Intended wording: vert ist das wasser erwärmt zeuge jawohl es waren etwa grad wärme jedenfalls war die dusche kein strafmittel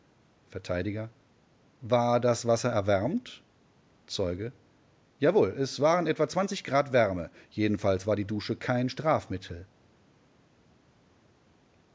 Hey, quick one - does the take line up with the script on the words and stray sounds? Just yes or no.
no